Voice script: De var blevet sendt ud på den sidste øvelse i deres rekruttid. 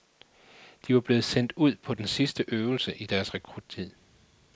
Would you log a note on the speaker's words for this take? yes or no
no